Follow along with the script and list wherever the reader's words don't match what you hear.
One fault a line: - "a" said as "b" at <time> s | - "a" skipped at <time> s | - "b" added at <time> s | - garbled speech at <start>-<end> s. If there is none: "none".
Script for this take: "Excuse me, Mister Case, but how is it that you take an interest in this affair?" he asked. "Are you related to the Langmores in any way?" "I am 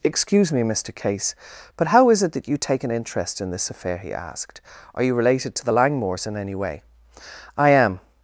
none